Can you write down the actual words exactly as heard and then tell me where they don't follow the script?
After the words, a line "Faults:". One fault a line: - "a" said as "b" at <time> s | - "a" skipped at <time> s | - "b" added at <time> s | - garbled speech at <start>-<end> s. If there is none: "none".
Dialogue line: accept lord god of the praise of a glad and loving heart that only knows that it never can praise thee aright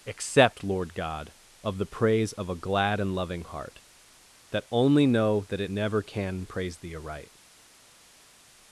accept lord god of the praise of a glad and loving heart that only know that it never can praise thee aright
Faults:
- "knows" said as "know" at 5.1 s